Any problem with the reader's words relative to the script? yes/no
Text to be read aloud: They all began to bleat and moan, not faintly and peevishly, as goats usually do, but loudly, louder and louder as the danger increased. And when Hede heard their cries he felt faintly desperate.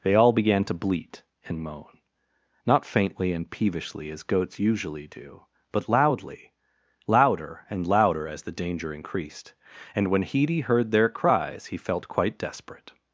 yes